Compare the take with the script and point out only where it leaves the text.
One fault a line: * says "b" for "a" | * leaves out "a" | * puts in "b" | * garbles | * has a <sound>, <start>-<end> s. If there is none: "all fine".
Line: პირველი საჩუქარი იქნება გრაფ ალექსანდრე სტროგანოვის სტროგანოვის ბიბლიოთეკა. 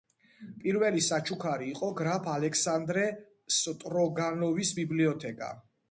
* says "იყო" for "იქნება"
* leaves out "სტროგანოვის"